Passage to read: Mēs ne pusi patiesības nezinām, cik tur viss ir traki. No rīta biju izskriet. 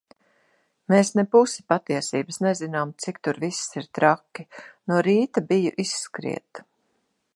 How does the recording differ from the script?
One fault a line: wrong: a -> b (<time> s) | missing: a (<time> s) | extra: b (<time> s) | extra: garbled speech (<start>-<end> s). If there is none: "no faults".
no faults